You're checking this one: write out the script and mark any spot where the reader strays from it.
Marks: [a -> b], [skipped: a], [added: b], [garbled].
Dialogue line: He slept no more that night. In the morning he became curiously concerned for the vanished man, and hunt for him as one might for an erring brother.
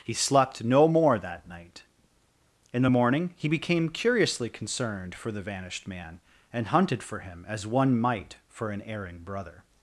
He slept no more that night. In the morning he became curiously concerned for the vanished man, and [hunt -> hunted] for him as one might for an erring brother.